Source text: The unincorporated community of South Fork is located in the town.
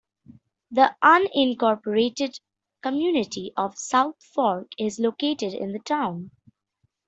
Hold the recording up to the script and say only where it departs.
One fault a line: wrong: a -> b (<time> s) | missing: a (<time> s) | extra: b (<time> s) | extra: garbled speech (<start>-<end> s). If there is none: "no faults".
no faults